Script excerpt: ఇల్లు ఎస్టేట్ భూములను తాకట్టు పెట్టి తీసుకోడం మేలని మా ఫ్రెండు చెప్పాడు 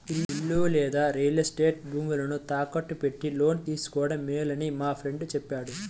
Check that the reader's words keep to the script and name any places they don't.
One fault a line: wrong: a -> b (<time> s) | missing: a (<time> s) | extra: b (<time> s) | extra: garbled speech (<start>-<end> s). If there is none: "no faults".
extra: లేదా రియల్ (0.7 s)
extra: లోను (3.3 s)